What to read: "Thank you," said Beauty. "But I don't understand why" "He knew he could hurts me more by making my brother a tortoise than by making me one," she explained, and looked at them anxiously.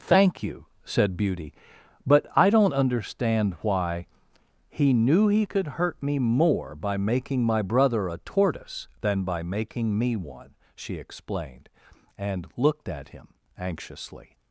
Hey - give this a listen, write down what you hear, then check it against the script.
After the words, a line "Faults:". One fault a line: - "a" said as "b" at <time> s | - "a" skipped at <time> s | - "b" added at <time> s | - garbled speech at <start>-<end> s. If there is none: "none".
"Thank you," said Beauty. "But I don't understand why" "He knew he could hurt me more by making my brother a tortoise than by making me one," she explained, and looked at him anxiously.
Faults:
- "hurts" said as "hurt" at 5.7 s
- "them" said as "him" at 13.1 s